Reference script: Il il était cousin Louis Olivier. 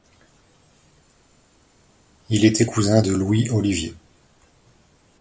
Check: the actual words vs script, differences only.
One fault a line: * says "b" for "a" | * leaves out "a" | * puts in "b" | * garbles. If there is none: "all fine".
* leaves out "il"
* puts in "de"